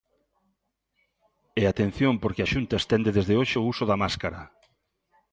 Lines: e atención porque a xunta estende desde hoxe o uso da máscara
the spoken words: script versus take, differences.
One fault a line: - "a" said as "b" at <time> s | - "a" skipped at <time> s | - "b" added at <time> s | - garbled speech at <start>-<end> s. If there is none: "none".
none